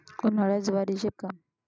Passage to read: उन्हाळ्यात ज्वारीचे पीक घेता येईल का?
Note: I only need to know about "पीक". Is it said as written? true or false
false